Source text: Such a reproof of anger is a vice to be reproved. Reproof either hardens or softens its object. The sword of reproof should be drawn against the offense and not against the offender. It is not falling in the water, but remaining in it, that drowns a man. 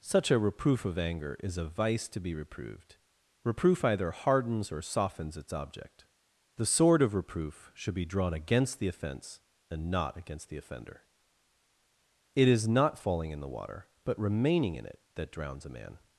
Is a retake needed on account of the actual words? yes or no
no